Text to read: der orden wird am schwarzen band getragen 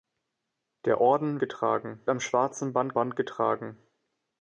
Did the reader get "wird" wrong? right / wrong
wrong